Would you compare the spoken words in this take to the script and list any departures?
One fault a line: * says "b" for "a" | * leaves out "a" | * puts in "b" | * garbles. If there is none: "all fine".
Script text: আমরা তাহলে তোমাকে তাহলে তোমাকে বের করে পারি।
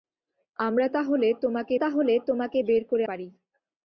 all fine